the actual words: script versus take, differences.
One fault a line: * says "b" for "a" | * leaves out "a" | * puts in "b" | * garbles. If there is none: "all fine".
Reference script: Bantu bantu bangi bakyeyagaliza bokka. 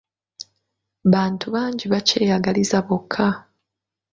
* leaves out "bantu"